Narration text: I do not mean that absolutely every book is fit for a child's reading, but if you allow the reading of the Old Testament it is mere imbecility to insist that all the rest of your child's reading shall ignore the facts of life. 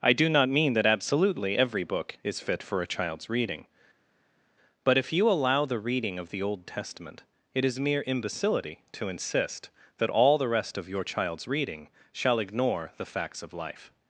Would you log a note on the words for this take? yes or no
no